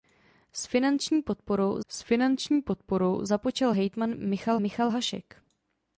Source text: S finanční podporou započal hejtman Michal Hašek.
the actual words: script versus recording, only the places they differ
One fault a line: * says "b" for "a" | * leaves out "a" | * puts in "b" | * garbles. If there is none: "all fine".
* puts in "s finanční podporou"
* puts in "Michal"